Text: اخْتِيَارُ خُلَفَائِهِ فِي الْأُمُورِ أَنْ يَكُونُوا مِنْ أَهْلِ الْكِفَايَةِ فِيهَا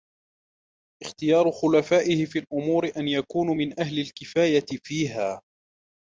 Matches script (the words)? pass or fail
pass